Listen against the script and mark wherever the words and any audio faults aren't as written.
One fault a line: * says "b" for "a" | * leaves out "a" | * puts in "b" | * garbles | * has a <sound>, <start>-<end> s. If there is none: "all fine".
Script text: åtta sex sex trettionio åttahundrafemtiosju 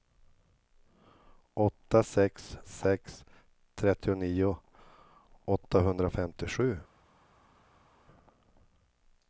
all fine